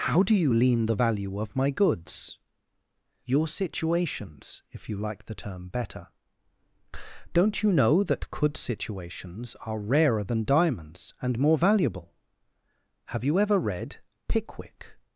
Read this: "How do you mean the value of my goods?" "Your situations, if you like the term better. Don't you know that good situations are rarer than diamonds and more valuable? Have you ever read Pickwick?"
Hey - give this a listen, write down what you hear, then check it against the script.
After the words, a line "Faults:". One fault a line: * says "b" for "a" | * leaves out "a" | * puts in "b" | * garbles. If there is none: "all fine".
"How do you lean the value of my goods?" "Your situations, if you like the term better. Don't you know that could situations are rarer than diamonds and more valuable? Have you ever read Pickwick?"
Faults:
* says "lean" for "mean"
* says "could" for "good"